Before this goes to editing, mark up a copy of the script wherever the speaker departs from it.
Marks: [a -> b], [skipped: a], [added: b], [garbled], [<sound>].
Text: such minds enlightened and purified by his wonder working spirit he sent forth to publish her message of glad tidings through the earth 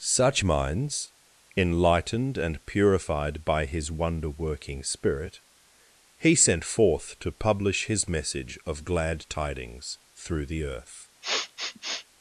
such minds enlightened and purified by his wonder working spirit he sent forth to publish [her -> his] message of glad tidings through the earth [sniff]